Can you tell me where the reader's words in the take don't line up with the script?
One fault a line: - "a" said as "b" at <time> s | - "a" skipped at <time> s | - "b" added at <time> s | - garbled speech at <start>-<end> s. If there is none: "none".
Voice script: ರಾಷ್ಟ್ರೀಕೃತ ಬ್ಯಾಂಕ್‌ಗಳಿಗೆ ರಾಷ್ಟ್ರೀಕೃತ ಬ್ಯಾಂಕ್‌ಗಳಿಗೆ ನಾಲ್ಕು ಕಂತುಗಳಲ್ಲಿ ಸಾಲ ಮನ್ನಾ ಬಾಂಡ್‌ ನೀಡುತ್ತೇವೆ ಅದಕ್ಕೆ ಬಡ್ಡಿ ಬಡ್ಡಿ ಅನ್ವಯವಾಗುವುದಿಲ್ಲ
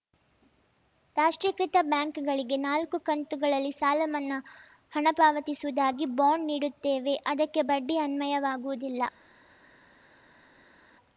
- "ರಾಷ್ಟ್ರೀಕೃತ ಬ್ಯಾಂಕ್‌ಗಳಿಗೆ" skipped at 2.6 s
- "ಹಣ ಪಾವತಿಸುವುದಾಗಿ" added at 4.9 s
- "ಬಡ್ಡಿ" skipped at 8.0 s